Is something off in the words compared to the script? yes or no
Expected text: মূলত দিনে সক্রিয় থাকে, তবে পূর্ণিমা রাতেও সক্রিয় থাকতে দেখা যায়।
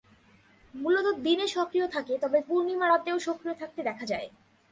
no